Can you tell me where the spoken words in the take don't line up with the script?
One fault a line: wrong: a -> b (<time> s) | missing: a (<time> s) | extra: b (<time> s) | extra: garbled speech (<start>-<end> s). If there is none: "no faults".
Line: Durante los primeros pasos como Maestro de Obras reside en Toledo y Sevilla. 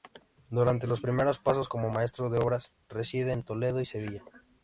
no faults